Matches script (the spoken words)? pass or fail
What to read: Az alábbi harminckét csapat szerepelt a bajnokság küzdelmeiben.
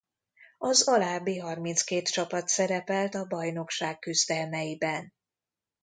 pass